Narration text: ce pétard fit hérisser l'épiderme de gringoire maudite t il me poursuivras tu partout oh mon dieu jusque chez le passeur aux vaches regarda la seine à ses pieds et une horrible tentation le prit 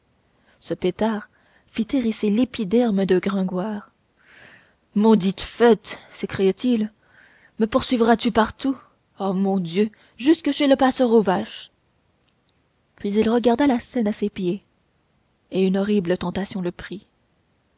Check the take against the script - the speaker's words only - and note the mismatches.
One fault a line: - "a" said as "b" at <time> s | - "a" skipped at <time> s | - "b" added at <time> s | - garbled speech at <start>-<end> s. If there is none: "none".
- "fête s'écria" added at 5.4 s
- "puis il" added at 12.9 s